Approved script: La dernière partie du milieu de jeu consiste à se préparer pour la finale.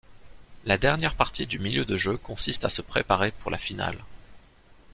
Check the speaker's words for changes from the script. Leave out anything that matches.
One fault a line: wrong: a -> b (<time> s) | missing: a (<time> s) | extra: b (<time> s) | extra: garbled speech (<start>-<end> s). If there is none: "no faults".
no faults